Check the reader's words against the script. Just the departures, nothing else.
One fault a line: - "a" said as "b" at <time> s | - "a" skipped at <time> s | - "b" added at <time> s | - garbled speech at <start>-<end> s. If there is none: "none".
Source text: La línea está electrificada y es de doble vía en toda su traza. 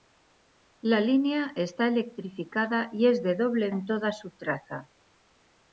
- "vía" skipped at 3.7 s